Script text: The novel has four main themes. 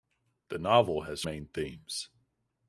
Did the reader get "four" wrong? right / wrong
wrong